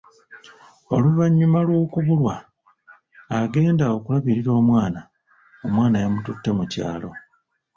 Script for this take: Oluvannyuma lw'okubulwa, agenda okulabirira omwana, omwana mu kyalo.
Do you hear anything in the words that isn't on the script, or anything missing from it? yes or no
yes